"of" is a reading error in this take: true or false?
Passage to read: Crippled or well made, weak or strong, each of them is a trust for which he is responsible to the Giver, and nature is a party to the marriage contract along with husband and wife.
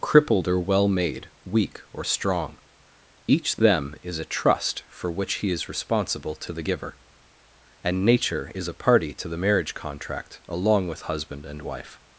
true